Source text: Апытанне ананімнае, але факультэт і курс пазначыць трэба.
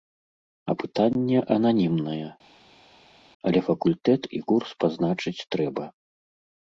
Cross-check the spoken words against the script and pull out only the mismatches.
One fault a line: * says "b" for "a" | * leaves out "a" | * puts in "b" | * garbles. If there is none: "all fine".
all fine